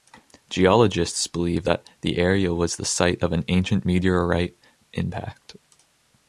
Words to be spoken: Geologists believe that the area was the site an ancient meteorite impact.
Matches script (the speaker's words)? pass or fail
fail